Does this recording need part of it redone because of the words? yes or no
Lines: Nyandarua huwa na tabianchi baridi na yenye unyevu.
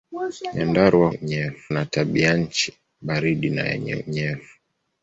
yes